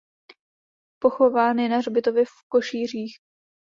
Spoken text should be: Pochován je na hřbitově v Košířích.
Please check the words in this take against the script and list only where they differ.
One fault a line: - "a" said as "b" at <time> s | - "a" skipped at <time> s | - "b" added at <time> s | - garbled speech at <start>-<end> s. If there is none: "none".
none